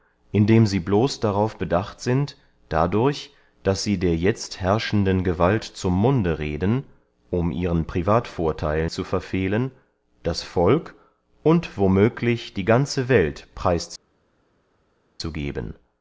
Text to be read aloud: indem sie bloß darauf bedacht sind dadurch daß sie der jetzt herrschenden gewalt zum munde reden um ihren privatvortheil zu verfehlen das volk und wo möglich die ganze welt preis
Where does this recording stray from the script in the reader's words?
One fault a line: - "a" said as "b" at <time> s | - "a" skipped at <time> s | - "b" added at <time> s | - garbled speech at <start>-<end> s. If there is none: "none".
none